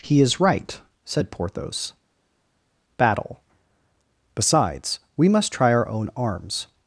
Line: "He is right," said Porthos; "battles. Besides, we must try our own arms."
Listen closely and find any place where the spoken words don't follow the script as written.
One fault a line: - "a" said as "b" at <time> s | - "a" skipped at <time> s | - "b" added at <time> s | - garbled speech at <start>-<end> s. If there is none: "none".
- "battles" said as "battle" at 3.0 s